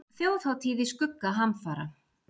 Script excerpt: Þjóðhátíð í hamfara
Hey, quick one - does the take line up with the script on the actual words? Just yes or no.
no